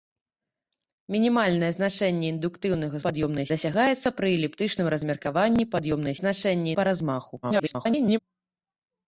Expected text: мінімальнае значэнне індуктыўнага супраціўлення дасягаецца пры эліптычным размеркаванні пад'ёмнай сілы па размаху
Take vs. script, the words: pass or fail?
fail